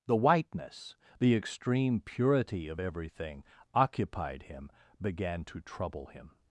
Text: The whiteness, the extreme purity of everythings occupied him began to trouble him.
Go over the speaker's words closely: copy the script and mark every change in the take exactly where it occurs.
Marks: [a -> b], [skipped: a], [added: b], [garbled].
The whiteness, the extreme purity of [everythings -> everything] occupied him began to trouble him.